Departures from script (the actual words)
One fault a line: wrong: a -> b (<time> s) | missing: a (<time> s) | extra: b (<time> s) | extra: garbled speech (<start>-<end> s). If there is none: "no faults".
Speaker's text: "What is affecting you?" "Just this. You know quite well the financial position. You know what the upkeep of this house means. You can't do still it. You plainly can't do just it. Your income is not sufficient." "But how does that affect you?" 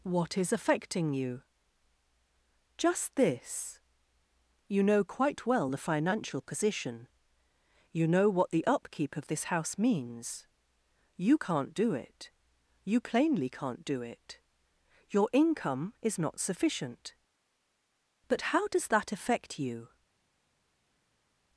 missing: still (11.9 s)
missing: just (14.0 s)